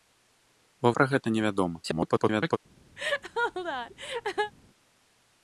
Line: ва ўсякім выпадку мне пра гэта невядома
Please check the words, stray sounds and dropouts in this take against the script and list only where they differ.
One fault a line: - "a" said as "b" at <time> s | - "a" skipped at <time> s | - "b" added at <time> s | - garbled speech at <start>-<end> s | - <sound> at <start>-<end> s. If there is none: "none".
- "ўсякім выпадку мне" skipped at 0.9 s
- garbled speech at 1.8-2.6 s
- laugh at 3.0-4.5 s